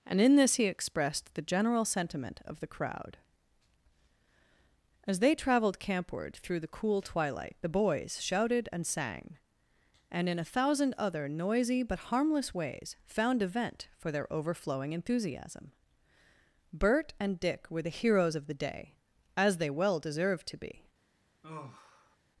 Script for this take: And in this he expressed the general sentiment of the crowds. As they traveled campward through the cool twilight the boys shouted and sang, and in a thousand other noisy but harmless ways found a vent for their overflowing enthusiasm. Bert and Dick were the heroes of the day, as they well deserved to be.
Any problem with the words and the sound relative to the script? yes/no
yes